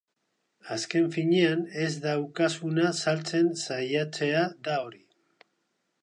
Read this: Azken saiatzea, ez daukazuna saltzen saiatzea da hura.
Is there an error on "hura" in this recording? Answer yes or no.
yes